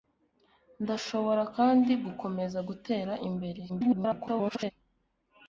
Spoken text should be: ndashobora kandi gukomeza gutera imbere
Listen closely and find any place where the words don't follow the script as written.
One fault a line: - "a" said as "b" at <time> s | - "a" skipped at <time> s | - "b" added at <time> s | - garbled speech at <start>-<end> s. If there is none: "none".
- garbled speech at 3.7-4.7 s